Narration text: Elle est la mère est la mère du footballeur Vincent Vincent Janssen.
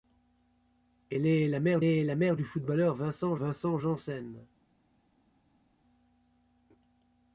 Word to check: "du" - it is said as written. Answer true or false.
true